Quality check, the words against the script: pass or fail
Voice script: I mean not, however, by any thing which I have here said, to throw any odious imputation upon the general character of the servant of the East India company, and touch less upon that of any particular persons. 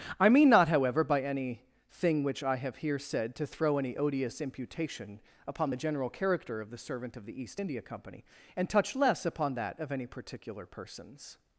pass